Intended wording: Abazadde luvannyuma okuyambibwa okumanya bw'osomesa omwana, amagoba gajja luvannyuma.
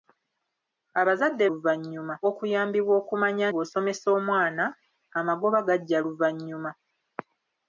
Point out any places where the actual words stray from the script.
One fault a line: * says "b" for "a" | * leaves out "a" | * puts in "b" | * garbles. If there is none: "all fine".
all fine